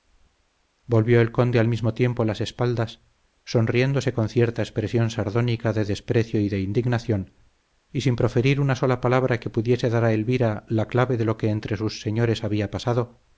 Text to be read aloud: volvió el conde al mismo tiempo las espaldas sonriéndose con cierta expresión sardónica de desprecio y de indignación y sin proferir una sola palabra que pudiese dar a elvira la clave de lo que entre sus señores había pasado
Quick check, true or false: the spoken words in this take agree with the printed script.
true